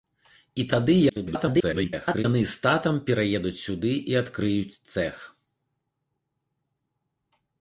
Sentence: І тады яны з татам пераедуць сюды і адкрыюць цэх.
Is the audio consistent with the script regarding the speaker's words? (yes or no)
no